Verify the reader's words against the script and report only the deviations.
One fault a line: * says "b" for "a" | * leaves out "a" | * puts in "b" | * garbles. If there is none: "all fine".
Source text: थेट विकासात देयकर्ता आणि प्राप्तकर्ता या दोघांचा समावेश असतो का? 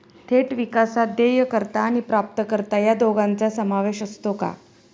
all fine